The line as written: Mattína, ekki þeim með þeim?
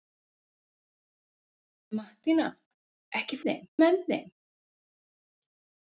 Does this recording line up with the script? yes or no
yes